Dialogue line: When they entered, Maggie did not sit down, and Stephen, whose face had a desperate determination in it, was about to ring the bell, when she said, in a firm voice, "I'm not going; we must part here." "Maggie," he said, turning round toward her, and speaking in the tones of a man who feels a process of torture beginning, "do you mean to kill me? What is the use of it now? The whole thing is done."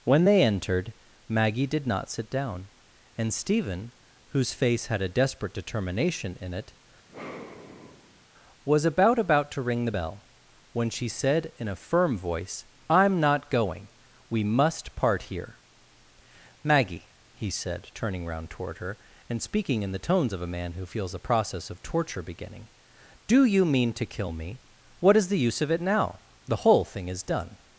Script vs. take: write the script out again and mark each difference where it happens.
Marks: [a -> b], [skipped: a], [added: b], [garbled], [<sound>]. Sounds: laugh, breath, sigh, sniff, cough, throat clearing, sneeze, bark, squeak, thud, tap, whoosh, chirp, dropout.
When they entered, Maggie did not sit down, and Stephen, whose face had a desperate determination in it, [sigh] was about [added: about] to ring the bell, when she said, in a firm voice, "I'm not going; we must part here." "Maggie," he said, turning round toward her, and speaking in the tones of a man who feels a process of torture beginning, "do you mean to kill me? What is the use of it now? The whole thing is done."